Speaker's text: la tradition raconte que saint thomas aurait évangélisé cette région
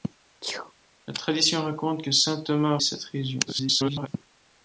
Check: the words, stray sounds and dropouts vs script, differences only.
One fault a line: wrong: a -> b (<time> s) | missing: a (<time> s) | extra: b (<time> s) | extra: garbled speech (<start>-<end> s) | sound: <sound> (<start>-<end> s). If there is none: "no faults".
sound: sneeze (0.4-0.7 s)
missing: aurait évangélisé (2.8 s)
extra: garbled speech (3.5-4.1 s)